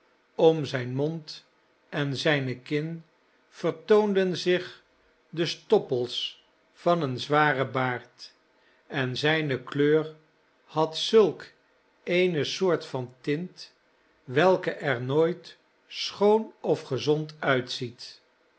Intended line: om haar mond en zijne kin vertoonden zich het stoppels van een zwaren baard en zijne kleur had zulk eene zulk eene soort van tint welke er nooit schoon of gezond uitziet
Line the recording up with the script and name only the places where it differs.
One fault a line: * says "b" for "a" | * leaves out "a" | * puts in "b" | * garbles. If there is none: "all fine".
* says "zijn" for "haar"
* says "de" for "het"
* leaves out "zulk eene"